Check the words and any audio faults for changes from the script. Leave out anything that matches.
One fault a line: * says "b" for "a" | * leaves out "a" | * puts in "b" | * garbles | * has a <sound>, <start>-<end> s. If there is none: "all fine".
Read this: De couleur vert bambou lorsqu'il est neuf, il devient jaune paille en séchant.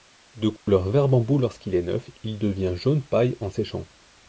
* has a dropout, 0.6-0.7 s